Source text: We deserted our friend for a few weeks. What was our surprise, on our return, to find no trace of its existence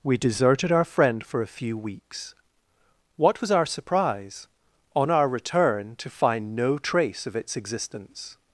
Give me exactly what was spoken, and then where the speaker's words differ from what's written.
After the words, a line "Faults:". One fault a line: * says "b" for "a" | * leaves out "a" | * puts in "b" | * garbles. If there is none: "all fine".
We deserted our friend for a few weeks. What was our surprise, on our return, to find no trace of its existence
Faults:
all fine